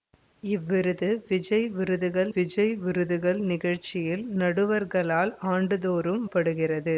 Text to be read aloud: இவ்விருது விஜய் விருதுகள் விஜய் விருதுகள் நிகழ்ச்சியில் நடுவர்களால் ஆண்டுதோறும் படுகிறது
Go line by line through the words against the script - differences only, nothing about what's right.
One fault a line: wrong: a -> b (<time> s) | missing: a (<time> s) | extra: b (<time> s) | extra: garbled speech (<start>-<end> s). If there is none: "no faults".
no faults